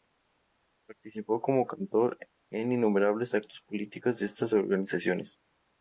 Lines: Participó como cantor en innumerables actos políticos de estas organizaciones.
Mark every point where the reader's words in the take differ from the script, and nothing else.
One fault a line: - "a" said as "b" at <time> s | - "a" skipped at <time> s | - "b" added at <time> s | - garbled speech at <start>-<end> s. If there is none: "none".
none